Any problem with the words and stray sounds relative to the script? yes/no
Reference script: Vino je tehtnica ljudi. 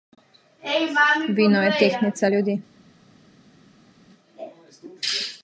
no